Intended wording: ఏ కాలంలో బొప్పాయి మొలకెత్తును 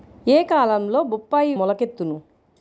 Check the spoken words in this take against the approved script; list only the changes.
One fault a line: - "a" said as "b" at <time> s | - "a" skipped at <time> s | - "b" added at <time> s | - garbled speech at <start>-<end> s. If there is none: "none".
none